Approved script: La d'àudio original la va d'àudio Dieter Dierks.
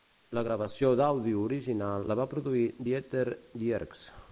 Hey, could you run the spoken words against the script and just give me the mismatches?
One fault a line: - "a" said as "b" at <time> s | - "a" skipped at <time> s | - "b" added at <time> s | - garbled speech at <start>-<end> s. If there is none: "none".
- "gravació" added at 0.5 s
- "d'àudio" said as "produir" at 2.3 s